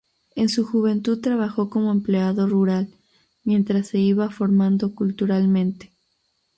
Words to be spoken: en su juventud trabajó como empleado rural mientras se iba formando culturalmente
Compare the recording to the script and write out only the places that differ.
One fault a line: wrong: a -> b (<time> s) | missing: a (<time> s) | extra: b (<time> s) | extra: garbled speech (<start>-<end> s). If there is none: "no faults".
no faults